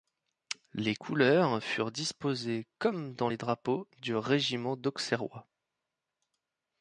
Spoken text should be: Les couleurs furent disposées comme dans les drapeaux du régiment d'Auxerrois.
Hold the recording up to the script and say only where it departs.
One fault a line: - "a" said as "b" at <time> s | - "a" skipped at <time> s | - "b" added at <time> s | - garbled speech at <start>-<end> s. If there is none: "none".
none